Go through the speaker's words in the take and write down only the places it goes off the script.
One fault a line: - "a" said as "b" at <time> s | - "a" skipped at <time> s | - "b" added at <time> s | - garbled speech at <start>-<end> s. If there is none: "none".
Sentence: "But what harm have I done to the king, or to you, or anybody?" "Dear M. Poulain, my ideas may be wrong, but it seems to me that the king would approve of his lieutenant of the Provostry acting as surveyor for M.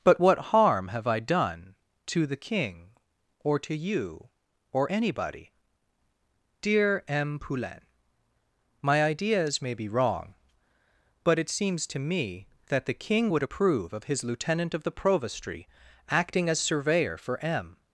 none